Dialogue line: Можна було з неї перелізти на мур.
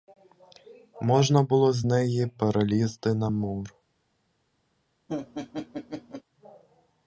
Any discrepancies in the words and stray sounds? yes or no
yes